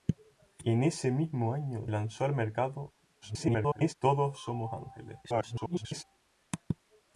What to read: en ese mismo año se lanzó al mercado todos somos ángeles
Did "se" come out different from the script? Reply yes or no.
yes